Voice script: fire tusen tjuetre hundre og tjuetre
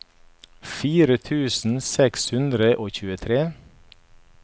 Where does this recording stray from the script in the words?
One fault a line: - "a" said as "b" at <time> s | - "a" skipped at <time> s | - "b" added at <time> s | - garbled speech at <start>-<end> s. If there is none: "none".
- "tjuetre" said as "seks" at 1.9 s